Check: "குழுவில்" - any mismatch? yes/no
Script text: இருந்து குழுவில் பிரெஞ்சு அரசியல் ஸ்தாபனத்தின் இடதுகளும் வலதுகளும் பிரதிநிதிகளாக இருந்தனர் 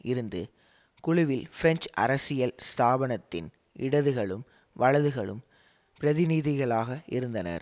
no